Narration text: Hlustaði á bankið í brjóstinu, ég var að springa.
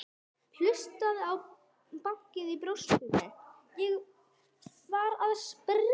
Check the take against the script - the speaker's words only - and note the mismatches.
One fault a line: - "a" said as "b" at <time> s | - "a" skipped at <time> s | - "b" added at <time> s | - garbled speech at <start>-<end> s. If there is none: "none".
none